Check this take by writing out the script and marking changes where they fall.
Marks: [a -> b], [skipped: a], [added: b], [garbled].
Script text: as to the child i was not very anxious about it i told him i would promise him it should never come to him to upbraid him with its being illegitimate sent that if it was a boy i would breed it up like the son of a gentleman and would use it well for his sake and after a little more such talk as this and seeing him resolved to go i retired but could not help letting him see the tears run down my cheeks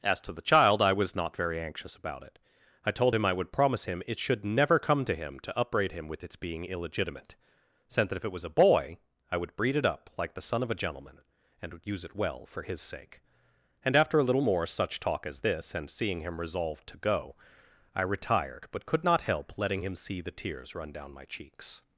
as to the child i was not very anxious about it i told him i would promise him it should never come to him to upbraid him with its being illegitimate sent that if it was a boy i would breed it up like the son of a gentleman and would use it well for his sake and after a little more such talk as this and seeing him resolved to go i retired but could not help letting him see the tears run down my cheeks